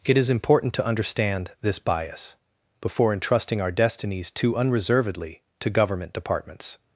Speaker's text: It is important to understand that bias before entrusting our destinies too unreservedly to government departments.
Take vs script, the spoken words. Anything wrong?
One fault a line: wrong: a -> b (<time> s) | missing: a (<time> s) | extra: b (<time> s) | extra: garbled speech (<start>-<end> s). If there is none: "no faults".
wrong: that -> this (1.6 s)